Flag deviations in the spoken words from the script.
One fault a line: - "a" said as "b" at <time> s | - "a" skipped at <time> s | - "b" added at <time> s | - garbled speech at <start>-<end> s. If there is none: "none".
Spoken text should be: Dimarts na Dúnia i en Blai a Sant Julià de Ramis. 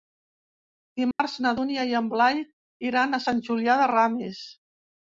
- "iran" added at 2.9 s